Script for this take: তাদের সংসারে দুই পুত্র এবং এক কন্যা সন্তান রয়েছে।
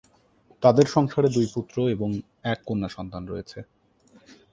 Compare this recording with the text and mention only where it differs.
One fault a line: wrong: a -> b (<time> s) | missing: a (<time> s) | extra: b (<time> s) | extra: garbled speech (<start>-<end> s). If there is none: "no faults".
no faults